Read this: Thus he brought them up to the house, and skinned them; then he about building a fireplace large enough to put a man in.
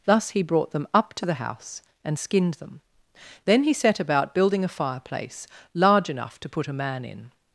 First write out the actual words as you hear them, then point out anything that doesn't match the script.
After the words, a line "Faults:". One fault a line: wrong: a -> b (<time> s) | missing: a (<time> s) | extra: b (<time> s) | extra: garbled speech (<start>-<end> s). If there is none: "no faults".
Thus he brought them up to the house, and skinned them; then he set about building a fireplace large enough to put a man in.
Faults:
extra: set (3.7 s)